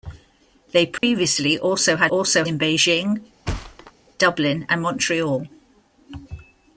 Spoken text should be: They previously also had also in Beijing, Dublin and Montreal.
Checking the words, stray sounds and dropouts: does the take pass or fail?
fail